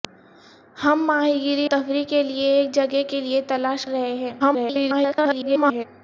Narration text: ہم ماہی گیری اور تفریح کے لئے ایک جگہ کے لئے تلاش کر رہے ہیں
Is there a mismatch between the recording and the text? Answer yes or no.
yes